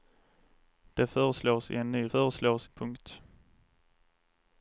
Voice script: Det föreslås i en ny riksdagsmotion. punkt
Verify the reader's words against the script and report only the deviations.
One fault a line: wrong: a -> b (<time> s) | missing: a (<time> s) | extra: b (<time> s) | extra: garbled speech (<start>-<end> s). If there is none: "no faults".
wrong: riksdagsmotion -> föreslås (2.0 s)